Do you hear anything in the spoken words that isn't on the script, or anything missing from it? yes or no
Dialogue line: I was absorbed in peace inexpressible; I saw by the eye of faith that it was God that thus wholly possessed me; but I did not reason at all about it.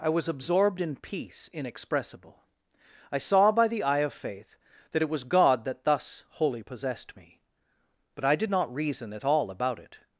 no